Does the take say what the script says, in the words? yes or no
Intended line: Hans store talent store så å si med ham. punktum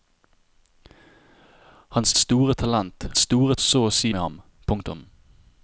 yes